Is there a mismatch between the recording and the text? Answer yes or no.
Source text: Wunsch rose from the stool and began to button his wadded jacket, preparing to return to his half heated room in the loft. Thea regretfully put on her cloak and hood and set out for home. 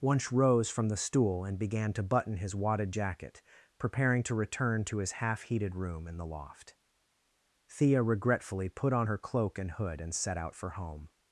no